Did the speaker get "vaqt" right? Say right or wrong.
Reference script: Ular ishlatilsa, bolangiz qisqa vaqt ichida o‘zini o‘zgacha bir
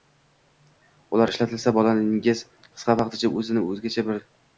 right